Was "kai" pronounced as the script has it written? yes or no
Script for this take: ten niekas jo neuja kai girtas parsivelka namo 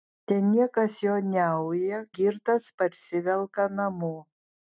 no